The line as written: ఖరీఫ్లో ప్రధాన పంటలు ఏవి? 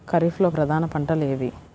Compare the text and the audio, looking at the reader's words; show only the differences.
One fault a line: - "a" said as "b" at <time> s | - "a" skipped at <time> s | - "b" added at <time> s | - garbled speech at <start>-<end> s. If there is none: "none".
none